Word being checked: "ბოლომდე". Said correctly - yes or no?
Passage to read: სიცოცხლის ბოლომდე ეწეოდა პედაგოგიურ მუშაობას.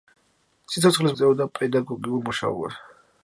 no